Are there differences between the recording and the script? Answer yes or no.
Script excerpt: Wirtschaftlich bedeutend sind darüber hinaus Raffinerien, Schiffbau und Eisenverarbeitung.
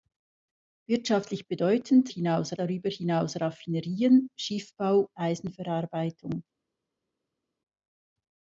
yes